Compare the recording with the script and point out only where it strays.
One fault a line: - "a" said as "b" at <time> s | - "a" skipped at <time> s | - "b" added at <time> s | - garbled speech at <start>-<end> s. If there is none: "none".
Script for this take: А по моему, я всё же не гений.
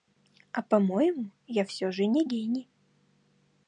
none